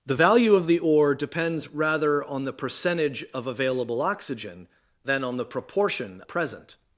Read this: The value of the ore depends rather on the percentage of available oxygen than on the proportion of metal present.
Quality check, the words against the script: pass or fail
fail